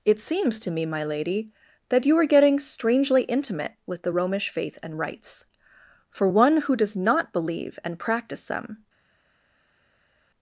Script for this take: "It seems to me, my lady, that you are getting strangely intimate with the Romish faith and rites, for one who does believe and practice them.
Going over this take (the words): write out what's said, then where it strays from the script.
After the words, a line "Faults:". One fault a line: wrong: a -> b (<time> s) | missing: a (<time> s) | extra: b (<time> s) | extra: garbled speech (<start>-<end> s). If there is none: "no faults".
"It seems to me, my lady, that you are getting strangely intimate with the Romish faith and rites, for one who does not believe and practice them.
Faults:
extra: not (7.0 s)